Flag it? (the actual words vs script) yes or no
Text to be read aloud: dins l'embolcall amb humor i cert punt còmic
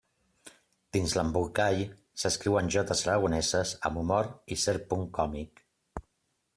yes